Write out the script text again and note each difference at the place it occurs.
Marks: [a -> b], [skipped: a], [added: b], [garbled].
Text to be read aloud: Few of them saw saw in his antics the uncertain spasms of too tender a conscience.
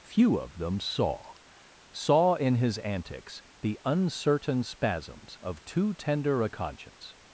Few of them saw saw in his antics the uncertain spasms of too tender a conscience.